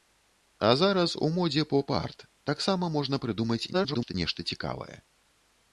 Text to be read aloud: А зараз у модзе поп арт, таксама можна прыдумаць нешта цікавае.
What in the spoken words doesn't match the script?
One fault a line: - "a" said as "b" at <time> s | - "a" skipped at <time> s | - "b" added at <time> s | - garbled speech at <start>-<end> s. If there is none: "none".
- garbled speech at 3.7-4.1 s